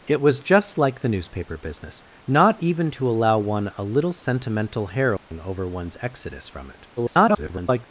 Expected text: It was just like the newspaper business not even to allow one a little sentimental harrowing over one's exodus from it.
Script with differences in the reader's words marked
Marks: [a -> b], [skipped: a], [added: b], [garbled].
It was just like the newspaper business not even to allow one a little sentimental harrowing over one's exodus from it. [garbled]